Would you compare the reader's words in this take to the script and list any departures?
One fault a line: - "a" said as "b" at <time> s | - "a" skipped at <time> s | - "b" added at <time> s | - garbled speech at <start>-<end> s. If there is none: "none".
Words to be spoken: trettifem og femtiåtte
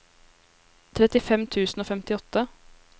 - "tusen" added at 1.6 s